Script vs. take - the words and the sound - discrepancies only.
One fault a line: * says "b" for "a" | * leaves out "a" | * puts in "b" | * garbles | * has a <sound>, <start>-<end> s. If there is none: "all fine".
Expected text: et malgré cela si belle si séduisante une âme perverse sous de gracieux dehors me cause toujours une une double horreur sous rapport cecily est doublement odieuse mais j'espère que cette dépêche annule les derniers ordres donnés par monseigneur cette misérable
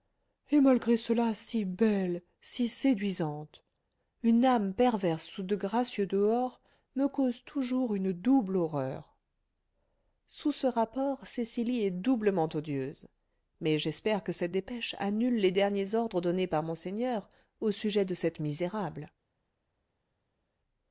* leaves out "une"
* puts in "ce"
* puts in "au sujet de"